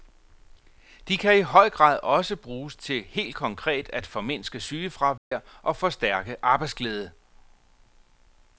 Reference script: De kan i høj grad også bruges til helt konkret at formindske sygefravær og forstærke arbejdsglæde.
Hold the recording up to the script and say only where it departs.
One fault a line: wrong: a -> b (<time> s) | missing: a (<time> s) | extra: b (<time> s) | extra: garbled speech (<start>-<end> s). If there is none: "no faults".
no faults